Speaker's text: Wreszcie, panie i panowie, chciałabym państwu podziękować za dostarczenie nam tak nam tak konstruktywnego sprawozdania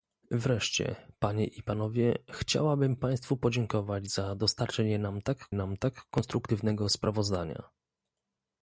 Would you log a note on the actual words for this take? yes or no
no